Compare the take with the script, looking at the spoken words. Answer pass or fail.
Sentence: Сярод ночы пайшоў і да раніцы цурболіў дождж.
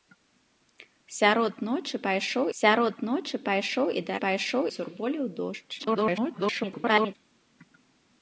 fail